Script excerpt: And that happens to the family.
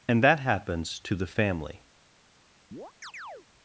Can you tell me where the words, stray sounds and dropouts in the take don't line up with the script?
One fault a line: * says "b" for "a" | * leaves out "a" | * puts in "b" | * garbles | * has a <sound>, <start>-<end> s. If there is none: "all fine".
* has a chirp, 2.7-3.5 s